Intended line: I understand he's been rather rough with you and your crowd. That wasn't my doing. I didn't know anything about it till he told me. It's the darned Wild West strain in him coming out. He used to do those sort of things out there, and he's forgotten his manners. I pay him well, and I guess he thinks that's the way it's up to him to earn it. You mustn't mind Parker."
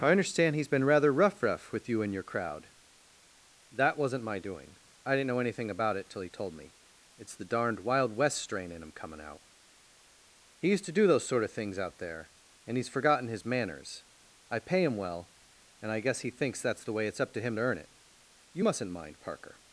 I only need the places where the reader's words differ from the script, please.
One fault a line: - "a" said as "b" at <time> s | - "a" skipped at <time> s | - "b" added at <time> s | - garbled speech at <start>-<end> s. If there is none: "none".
- "rough" added at 1.4 s